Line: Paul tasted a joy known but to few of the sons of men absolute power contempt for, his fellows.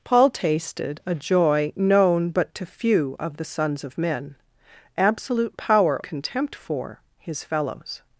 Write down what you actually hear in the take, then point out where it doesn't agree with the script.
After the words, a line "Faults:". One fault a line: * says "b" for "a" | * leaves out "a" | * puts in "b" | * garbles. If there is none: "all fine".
Paul tasted a joy known but to few of the sons of men absolute power contempt for, his fellows.
Faults:
all fine